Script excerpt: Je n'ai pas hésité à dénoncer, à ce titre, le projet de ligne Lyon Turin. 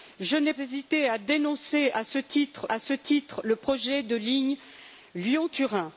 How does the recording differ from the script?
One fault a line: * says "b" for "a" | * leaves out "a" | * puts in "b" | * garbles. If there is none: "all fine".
* leaves out "pas"
* puts in "à ce titre"